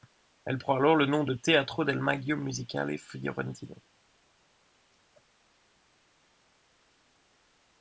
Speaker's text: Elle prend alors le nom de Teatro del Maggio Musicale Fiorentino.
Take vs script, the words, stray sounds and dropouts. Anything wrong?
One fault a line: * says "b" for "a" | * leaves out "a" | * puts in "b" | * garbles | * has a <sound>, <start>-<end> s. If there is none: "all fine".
all fine